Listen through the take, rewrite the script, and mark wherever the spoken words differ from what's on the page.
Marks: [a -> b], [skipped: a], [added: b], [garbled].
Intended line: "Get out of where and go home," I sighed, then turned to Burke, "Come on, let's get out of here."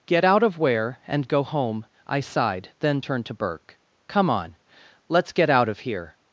"Get out of where and go home," I sighed, then turned to Burke, "Come on, let's get out of here."